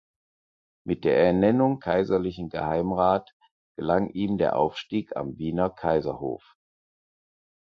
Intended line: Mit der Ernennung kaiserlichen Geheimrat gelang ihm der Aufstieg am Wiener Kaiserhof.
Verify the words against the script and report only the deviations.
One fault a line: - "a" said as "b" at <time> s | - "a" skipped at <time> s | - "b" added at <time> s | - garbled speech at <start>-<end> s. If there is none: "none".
none